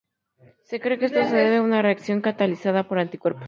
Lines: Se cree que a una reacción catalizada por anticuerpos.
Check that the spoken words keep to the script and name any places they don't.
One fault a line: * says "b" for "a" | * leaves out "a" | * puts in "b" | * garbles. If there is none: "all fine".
* puts in "esto se debe"